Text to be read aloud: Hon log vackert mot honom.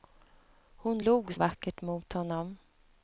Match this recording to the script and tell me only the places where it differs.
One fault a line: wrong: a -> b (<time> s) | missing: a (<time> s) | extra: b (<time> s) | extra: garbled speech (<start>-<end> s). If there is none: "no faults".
no faults